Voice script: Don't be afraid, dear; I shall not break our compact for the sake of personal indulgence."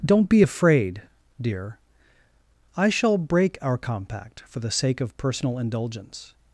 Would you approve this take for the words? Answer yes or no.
no